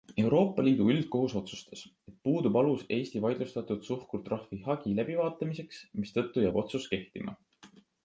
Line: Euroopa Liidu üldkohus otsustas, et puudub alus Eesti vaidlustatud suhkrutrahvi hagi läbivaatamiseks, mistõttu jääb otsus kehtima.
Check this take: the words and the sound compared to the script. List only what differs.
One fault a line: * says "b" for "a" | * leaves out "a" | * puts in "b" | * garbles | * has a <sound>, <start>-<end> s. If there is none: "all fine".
all fine